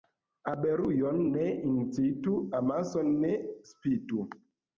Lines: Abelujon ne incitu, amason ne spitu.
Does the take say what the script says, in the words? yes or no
yes